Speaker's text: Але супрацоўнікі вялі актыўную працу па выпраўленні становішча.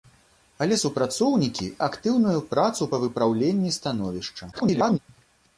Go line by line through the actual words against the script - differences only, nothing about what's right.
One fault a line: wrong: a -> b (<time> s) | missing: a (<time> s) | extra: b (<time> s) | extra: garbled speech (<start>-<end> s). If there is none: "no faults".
missing: вялі (1.7 s)
extra: garbled speech (4.5-5.0 s)